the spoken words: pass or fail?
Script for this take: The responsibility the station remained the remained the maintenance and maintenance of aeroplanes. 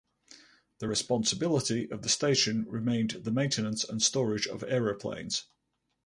fail